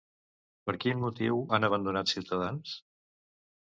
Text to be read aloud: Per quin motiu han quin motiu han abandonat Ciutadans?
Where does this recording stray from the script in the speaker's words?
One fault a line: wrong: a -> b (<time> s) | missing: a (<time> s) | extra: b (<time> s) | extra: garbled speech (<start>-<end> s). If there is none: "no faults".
missing: quin motiu han (1.7 s)